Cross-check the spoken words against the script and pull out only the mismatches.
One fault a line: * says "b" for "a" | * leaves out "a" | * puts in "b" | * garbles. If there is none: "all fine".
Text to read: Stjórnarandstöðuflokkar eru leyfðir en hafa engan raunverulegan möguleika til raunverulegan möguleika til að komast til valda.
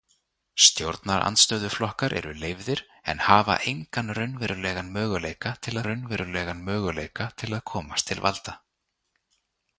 all fine